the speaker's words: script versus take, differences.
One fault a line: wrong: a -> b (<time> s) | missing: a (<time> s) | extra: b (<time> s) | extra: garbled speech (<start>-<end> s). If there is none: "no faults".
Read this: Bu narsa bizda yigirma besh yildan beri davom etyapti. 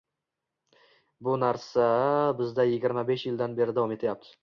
no faults